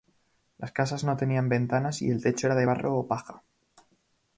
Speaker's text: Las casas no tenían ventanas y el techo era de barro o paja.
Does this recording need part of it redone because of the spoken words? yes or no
no